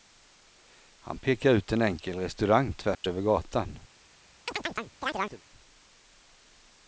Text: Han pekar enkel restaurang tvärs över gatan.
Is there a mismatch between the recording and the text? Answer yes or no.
yes